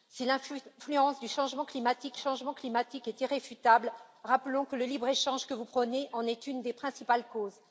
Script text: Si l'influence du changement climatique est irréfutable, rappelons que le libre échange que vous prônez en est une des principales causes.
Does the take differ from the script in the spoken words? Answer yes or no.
yes